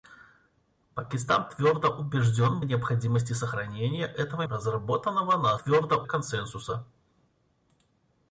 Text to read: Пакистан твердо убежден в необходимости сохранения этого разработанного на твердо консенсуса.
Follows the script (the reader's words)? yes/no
yes